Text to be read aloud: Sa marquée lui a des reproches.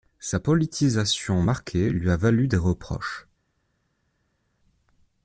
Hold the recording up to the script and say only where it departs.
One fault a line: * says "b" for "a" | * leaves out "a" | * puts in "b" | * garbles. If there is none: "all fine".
* puts in "politisation"
* puts in "valu"